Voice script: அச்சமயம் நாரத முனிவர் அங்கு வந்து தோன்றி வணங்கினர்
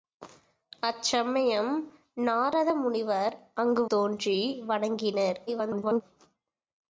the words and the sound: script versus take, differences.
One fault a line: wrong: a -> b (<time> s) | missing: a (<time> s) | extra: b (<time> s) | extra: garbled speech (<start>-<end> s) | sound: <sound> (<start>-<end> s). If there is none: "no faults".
missing: வந்து (3.9 s)
extra: garbled speech (5.5-6.0 s)